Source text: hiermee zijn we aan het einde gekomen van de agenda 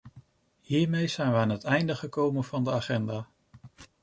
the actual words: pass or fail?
pass